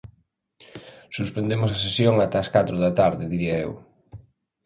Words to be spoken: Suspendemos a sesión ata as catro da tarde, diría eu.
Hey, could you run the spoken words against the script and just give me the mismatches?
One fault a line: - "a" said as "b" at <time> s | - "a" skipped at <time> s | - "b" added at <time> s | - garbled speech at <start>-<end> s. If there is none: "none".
none